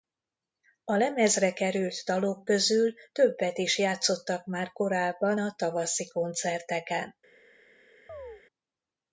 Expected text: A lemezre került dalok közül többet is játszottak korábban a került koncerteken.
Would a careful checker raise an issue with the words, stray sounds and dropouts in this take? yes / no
yes